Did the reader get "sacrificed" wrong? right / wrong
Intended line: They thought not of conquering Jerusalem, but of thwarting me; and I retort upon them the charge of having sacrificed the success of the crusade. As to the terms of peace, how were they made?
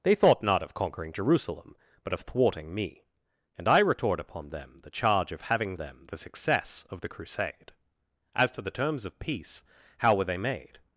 wrong